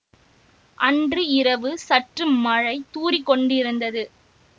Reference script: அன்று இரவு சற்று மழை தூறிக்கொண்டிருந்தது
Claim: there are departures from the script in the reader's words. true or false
false